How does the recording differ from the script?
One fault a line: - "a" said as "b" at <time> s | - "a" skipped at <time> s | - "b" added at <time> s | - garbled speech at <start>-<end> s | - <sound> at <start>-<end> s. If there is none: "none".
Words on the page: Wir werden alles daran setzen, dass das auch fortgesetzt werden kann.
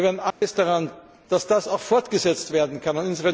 - dropout at 0.3-0.4 s
- "setzen" skipped at 0.9 s